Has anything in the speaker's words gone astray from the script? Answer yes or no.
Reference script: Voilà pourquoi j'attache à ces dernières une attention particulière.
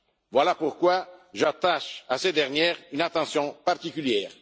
no